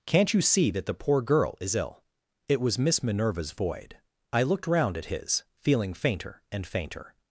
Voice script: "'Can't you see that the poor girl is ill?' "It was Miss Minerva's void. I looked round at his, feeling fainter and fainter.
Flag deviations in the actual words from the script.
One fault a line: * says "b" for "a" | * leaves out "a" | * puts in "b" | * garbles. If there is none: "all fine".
all fine